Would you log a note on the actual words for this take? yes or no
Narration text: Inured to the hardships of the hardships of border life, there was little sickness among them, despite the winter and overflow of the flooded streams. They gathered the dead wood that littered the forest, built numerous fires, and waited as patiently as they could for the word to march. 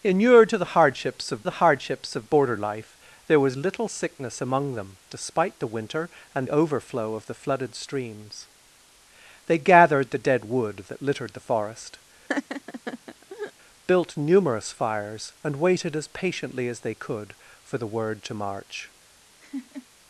no